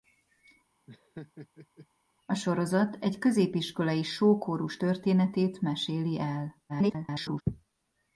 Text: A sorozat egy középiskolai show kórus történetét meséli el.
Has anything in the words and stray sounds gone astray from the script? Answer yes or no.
yes